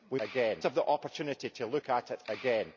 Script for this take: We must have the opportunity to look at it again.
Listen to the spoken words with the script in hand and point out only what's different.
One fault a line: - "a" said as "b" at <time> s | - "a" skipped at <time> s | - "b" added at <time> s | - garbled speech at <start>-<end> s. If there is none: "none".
- "must" said as "again" at 0.2 s